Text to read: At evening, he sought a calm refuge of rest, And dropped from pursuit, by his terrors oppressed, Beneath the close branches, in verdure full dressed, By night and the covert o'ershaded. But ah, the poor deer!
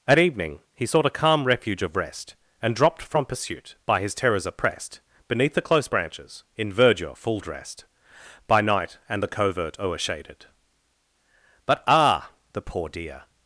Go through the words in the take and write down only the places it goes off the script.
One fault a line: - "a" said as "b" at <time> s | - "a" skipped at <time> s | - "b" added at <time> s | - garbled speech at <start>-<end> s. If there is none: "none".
none